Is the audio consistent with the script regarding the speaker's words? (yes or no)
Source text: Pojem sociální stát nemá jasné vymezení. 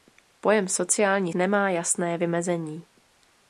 no